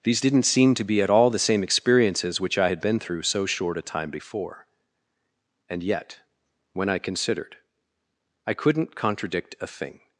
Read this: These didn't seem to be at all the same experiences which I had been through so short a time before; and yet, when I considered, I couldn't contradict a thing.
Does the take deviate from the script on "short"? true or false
false